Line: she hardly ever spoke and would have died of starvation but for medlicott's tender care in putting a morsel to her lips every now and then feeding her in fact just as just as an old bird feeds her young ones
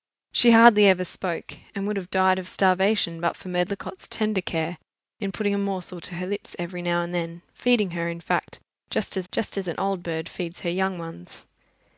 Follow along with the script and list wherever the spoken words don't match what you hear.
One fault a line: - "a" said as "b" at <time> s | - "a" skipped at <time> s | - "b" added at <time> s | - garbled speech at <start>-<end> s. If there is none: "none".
none